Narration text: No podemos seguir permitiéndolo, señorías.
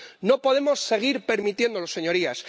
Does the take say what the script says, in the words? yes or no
yes